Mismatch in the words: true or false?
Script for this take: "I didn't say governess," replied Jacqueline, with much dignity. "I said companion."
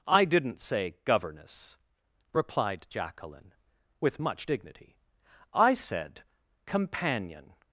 false